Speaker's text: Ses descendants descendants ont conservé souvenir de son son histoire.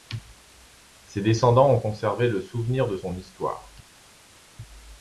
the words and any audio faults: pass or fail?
fail